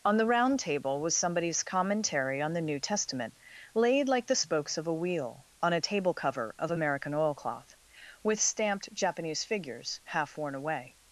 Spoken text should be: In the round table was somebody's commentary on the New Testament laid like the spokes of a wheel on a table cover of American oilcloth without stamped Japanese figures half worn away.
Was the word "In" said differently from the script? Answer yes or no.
yes